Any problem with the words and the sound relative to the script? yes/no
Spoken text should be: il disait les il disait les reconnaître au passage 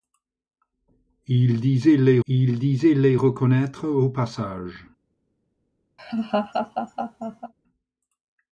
yes